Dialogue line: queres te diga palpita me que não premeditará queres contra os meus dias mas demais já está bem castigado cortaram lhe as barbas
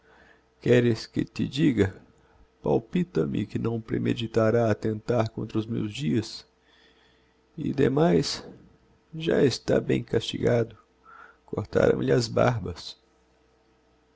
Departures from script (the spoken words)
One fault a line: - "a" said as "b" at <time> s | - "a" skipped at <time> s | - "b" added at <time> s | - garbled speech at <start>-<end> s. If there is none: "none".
- "que" added at 1.1 s
- "queres" said as "attentar" at 4.7 s
- "mas" said as "e" at 7.6 s